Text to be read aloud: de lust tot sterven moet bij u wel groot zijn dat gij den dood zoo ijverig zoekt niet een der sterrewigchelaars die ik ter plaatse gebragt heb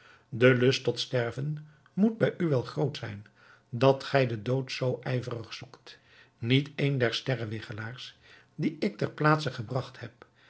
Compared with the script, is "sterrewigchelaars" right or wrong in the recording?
right